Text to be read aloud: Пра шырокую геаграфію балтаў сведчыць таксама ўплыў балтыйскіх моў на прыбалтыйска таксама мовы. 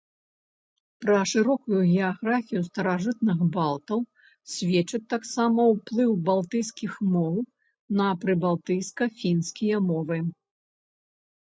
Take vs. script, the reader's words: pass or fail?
fail